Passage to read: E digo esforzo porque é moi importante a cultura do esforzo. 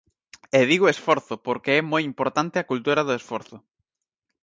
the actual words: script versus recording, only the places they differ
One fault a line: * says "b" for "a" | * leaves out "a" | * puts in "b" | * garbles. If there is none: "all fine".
all fine